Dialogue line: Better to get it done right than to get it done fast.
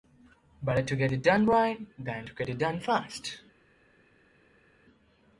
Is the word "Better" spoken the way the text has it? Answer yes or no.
yes